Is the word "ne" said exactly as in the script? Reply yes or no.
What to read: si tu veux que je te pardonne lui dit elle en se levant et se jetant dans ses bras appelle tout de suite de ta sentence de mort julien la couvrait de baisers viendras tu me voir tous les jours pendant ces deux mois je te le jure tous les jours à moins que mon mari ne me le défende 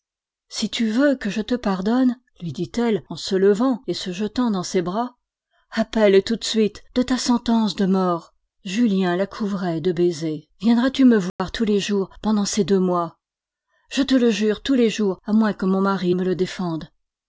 no